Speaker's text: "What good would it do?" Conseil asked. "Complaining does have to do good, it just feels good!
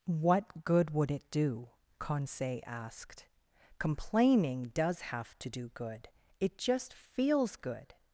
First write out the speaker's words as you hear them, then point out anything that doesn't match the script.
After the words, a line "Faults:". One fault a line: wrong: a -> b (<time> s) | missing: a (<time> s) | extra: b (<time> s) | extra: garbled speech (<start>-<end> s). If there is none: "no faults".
"What good would it do?" Conseil asked. "Complaining does have to do good, it just feels good!
Faults:
no faults